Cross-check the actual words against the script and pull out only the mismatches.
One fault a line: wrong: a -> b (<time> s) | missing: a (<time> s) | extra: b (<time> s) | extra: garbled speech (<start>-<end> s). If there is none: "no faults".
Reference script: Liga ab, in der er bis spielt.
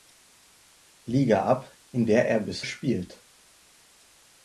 no faults